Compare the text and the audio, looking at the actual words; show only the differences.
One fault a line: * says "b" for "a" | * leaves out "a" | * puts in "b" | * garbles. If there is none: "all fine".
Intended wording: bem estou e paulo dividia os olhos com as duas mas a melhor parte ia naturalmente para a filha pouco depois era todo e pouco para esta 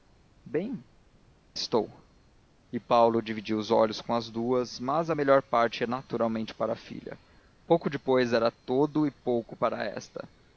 all fine